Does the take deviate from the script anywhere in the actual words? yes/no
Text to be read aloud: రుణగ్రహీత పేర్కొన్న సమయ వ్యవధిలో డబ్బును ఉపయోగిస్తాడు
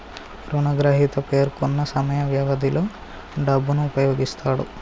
no